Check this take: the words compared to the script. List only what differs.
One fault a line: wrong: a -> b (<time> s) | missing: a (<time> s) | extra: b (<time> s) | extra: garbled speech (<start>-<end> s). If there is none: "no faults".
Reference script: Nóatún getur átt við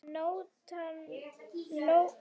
no faults